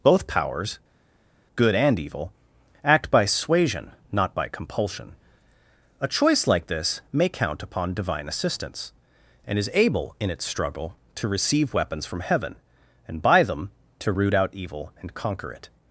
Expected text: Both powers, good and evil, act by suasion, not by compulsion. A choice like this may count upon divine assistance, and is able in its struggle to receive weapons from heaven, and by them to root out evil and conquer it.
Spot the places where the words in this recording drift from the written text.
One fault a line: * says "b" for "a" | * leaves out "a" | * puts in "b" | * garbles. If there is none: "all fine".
all fine